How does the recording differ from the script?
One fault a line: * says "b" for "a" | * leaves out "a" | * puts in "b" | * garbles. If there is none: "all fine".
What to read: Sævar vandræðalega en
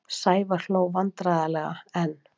* puts in "hló"